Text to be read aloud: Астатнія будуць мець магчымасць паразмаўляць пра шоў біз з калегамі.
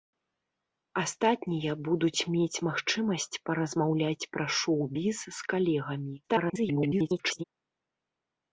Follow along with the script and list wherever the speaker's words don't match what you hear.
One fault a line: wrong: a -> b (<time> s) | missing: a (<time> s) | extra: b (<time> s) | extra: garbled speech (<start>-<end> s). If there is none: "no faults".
extra: garbled speech (6.2-7.4 s)